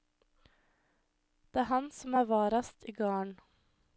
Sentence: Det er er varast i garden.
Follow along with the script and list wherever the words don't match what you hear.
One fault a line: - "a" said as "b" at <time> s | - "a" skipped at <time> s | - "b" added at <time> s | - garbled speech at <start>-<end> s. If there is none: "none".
- "han som" added at 1.7 s